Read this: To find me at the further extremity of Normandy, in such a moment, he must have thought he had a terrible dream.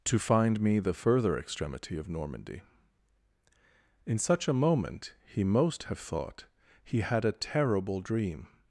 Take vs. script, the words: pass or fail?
fail